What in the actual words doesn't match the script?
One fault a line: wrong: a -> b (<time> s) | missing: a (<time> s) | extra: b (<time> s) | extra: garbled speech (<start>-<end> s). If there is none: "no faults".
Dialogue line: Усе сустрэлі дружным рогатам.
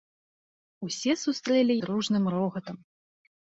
no faults